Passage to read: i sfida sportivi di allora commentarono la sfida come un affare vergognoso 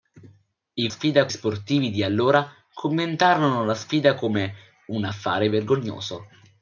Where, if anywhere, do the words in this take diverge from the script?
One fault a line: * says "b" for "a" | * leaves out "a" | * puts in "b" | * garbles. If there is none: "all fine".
all fine